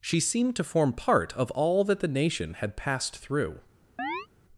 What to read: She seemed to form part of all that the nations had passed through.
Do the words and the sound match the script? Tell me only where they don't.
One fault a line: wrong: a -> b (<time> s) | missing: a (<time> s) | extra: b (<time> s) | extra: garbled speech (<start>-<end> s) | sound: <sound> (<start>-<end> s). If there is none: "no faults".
wrong: nations -> nation (2.1 s)
sound: chirp (4.0-4.3 s)